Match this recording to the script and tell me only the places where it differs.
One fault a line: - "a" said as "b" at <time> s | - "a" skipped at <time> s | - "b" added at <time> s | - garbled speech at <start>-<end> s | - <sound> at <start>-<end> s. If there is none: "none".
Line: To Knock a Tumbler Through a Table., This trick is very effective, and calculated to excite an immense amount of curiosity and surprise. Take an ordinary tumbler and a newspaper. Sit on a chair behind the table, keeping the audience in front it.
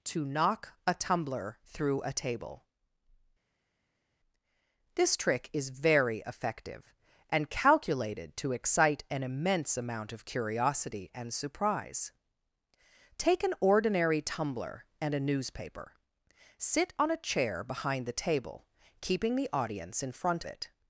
none